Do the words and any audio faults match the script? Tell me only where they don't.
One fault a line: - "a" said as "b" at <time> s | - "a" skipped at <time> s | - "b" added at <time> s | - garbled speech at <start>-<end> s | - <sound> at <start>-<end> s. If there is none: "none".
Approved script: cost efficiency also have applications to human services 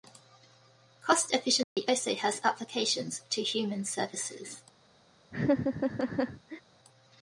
- dropout at 1.6-1.8 s
- "have" said as "has" at 2.1 s
- laugh at 5.3-6.6 s